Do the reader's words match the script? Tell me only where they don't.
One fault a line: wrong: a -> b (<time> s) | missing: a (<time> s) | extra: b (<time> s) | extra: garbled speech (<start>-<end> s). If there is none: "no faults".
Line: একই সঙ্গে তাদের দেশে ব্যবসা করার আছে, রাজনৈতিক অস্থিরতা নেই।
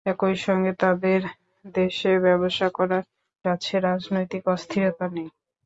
no faults